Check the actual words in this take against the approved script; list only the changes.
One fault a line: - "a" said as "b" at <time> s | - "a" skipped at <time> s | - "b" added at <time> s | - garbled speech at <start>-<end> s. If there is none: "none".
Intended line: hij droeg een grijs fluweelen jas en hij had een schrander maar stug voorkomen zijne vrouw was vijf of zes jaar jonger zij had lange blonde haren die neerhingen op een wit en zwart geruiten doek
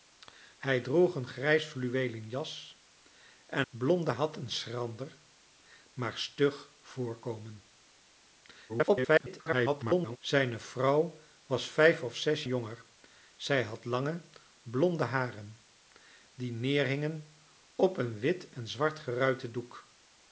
- "hij" said as "blonde" at 3.7 s
- garbled speech at 8.7-10.2 s
- "jaar" skipped at 12.4 s